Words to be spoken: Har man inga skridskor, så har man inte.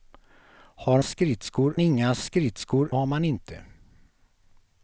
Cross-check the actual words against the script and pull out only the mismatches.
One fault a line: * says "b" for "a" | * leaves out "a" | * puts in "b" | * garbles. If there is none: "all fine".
* says "skridskor" for "man"
* leaves out "så"